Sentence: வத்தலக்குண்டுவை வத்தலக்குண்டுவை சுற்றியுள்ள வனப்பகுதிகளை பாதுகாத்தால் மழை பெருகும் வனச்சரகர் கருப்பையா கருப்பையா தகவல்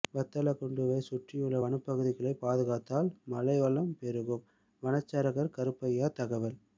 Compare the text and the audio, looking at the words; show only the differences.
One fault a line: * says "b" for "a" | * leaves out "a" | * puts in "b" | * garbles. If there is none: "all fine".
* leaves out "வத்தலக்குண்டுவை"
* puts in "வளம்"
* leaves out "கருப்பையா"